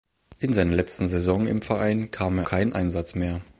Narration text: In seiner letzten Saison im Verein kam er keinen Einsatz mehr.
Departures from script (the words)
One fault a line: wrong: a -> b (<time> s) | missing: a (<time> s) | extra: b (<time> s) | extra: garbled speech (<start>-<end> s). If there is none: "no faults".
no faults